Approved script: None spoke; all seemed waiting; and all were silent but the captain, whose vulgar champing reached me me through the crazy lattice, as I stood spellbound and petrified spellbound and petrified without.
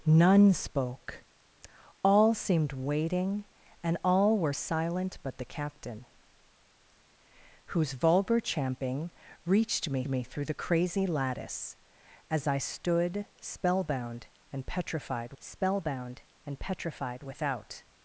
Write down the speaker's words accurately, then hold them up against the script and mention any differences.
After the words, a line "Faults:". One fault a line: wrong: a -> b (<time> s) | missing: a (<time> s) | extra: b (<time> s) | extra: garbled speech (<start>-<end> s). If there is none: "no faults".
None spoke; all seemed waiting; and all were silent but the captain, whose vulgar champing reached me me through the crazy lattice, as I stood spellbound and petrified spellbound and petrified without.
Faults:
no faults